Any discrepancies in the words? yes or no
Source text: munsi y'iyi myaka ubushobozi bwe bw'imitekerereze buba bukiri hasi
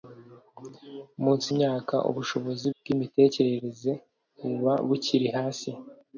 yes